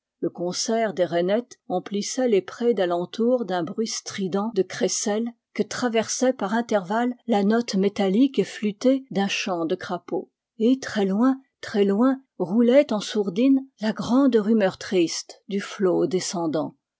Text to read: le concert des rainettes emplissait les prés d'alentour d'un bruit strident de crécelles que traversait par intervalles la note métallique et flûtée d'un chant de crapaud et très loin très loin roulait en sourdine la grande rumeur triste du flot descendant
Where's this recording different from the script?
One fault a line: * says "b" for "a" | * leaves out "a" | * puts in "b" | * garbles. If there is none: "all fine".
all fine